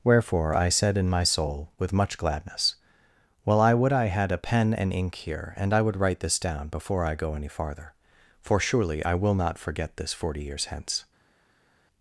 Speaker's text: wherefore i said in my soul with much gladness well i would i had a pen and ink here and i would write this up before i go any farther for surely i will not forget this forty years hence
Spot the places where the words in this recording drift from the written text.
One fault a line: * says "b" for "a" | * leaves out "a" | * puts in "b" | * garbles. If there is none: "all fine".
* says "down" for "up"